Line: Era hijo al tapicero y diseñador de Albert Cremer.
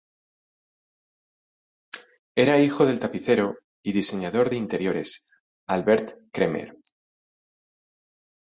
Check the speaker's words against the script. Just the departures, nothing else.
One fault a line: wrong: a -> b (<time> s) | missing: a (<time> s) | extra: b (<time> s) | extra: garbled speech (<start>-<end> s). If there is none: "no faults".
wrong: al -> del (2.9 s)
extra: interiores (4.6 s)